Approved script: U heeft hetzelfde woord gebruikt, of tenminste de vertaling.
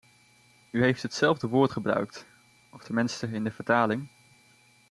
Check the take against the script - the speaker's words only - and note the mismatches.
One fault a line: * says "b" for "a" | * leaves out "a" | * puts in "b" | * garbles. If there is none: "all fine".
* puts in "in"